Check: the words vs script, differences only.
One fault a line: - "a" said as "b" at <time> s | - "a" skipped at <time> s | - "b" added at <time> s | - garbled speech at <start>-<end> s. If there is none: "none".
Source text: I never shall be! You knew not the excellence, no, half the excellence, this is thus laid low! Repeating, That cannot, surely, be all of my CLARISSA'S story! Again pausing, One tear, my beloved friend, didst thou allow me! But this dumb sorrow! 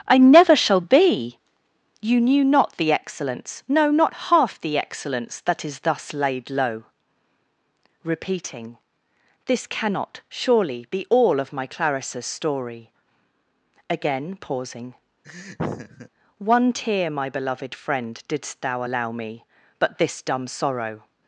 - "not" added at 3.9 s
- "this" said as "that" at 5.4 s
- "That" said as "This" at 9.4 s